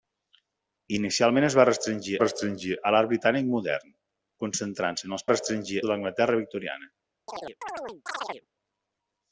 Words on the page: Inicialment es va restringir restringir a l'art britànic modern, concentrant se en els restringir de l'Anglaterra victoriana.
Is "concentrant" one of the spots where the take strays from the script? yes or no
no